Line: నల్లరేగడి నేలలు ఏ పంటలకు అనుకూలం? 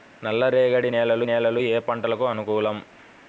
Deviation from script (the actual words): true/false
true